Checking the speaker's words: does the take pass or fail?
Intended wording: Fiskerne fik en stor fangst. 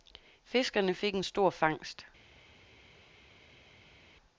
pass